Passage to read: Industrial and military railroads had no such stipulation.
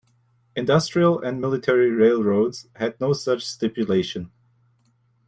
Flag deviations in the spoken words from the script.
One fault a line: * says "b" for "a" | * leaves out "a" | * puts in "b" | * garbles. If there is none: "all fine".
all fine